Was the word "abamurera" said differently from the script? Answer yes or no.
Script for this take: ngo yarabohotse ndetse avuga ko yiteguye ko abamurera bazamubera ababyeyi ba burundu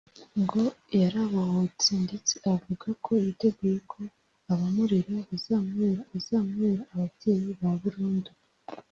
no